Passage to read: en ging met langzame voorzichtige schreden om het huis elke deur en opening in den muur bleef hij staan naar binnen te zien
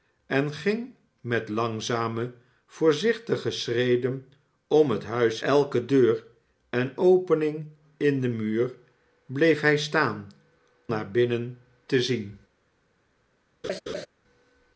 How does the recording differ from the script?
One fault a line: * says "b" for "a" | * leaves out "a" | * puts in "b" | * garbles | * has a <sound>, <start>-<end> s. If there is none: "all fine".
* has a laugh, 13.6-14.1 s